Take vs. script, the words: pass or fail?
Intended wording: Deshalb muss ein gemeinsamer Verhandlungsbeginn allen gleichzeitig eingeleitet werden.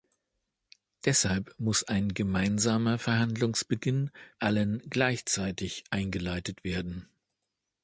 pass